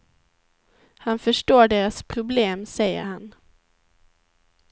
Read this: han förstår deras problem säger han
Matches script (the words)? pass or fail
pass